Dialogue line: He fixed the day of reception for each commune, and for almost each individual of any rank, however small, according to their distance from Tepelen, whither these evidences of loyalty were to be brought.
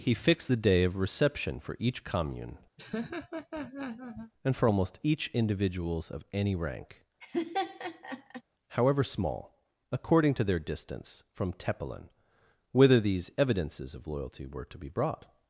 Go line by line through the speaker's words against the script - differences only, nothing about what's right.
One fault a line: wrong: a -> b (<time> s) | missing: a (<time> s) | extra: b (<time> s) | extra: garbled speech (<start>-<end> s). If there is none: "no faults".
wrong: individual -> individuals (5.3 s)